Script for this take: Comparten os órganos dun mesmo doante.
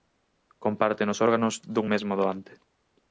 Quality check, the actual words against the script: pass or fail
pass